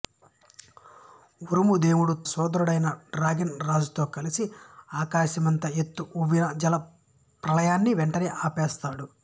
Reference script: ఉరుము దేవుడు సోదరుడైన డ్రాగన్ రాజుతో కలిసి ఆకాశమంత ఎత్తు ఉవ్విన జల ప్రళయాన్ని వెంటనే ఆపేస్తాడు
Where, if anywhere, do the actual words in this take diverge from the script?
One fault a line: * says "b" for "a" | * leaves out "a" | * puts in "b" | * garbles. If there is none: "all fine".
all fine